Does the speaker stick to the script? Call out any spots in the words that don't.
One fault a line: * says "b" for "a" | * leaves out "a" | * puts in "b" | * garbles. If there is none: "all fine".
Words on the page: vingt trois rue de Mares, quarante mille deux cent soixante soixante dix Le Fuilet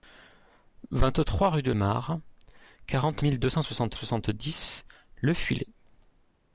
all fine